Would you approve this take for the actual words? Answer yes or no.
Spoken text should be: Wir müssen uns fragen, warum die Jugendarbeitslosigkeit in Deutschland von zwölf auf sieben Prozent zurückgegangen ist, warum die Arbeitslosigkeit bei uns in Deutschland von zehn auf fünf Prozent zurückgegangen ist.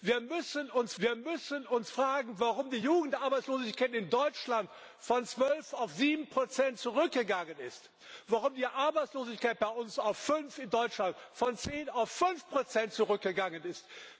no